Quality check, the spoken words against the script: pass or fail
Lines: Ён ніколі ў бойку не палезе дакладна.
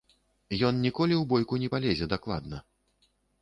pass